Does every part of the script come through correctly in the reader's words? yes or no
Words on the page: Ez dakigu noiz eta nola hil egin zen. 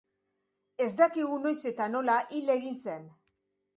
yes